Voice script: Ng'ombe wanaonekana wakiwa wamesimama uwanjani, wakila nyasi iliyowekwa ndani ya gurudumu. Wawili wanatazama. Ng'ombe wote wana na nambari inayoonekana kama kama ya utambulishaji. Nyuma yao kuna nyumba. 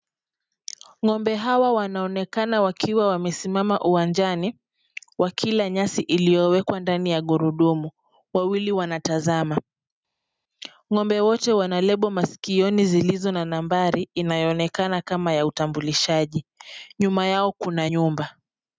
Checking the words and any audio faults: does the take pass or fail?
fail